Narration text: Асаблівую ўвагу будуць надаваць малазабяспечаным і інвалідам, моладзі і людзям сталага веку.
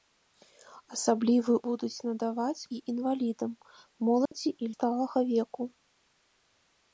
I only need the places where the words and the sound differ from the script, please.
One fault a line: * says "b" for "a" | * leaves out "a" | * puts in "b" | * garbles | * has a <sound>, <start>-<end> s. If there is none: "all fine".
* leaves out "ўвагу"
* leaves out "малазабяспечаным"
* has a dropout, 4.3-4.3 s
* leaves out "людзям"